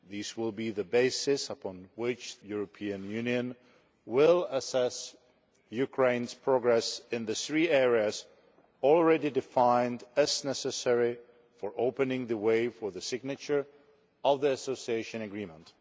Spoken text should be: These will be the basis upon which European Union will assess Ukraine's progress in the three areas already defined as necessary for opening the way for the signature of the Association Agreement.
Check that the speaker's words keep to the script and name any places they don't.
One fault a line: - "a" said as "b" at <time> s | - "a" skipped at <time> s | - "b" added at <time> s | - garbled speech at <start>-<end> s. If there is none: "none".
none